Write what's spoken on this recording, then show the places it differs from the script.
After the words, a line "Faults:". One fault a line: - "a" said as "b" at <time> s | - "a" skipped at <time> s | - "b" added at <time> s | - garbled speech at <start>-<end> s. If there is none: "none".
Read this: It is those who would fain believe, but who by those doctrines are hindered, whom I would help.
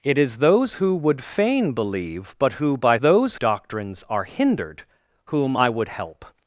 It is those who would fain believe, but who by those doctrines are hindered, whom I would help.
Faults:
none